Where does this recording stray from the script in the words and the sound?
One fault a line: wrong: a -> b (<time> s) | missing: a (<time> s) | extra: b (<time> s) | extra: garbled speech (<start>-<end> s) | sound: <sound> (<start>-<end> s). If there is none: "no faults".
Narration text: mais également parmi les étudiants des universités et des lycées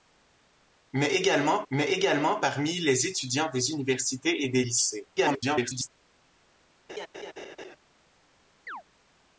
extra: mais également (1.7 s)
extra: garbled speech (5.2-5.9 s)
sound: laugh (6.9-7.8 s)
sound: chirp (8.7-8.8 s)